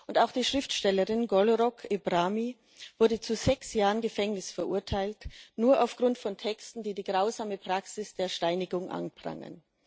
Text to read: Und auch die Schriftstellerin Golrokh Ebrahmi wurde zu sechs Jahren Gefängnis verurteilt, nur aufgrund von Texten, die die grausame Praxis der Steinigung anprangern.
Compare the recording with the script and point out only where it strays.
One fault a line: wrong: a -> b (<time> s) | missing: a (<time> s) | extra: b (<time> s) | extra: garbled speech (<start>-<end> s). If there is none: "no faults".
no faults